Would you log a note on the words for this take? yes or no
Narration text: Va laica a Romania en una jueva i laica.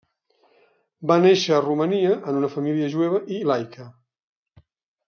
yes